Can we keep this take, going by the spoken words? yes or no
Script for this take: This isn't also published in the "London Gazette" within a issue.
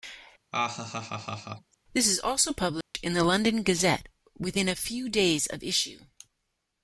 no